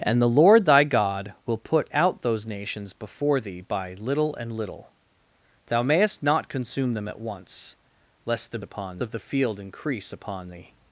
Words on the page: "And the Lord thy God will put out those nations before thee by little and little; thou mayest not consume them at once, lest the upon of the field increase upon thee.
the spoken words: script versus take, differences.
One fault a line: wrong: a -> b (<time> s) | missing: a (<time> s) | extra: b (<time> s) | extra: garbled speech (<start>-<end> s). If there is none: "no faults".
no faults